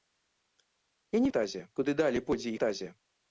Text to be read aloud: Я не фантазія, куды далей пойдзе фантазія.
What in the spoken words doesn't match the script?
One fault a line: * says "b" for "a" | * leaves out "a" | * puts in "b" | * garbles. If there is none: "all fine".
all fine